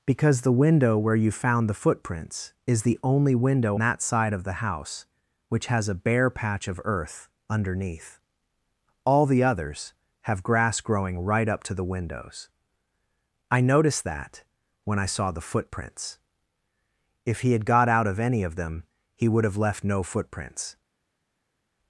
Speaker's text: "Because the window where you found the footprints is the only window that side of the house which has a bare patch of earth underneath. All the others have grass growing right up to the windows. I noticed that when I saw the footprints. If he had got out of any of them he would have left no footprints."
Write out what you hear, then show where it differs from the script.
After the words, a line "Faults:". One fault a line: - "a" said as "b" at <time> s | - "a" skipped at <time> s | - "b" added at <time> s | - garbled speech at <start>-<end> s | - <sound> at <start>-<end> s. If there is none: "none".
"Because the window where you found the footprints is the only window that side of the house which has a bare patch of earth underneath. All the others have grass growing right up to the windows. I noticed that when I saw the footprints. If he had got out of any of them he would have left no footprints."
Faults:
none